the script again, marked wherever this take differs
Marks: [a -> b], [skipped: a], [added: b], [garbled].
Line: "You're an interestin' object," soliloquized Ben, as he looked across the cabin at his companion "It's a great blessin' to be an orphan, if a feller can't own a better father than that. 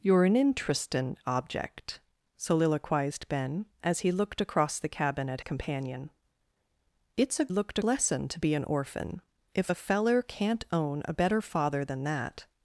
"You're an interestin' object," soliloquized Ben, as he looked across the cabin at [skipped: his] companion "It's a [great -> looked] blessin' to be an orphan, if a feller can't own a better father than that.